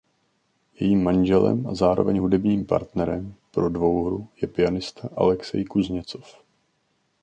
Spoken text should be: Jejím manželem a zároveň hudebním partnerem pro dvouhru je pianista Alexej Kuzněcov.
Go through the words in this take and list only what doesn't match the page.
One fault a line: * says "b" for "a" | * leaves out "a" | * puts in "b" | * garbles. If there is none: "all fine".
all fine